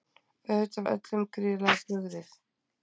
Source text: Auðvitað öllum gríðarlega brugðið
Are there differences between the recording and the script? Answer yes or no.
no